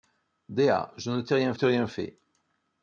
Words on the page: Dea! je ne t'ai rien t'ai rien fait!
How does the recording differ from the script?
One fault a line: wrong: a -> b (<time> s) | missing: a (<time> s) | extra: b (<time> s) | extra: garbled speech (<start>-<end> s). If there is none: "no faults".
no faults